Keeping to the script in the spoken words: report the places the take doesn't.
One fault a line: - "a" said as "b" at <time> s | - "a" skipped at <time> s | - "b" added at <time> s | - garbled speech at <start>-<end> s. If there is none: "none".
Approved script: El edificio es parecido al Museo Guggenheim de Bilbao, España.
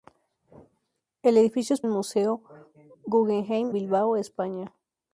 - "parecido" skipped at 1.8 s
- "de" skipped at 3.7 s